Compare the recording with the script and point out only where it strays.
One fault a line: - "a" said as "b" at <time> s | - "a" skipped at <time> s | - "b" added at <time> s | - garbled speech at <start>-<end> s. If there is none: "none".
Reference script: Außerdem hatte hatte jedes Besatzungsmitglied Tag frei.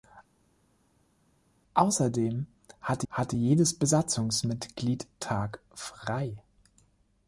none